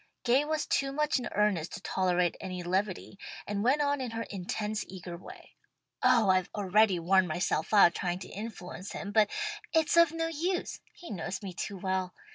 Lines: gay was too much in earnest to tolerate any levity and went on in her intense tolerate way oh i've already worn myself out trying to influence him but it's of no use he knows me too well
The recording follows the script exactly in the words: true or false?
false